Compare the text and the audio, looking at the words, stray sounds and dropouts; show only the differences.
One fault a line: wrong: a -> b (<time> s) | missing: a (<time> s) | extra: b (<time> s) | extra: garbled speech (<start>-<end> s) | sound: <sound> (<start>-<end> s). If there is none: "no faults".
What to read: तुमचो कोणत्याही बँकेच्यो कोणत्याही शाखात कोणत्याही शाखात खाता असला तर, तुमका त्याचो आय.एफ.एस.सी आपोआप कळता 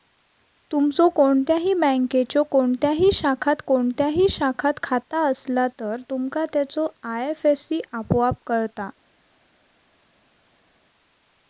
no faults